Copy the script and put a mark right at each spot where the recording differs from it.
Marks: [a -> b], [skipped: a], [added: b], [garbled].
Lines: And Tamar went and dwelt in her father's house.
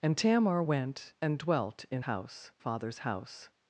And Tamar went and dwelt in [her -> house] father's house.